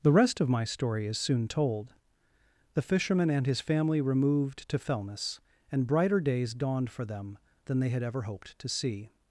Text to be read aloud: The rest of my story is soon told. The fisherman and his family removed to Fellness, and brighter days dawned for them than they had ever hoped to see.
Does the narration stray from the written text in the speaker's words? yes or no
no